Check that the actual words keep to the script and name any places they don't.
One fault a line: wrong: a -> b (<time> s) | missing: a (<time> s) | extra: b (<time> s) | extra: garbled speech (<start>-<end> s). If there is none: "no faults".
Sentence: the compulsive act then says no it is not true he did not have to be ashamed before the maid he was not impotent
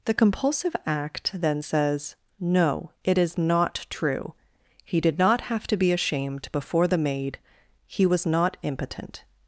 no faults